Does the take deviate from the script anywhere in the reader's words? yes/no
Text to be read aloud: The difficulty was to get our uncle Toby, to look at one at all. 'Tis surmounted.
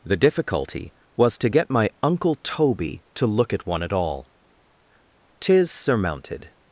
yes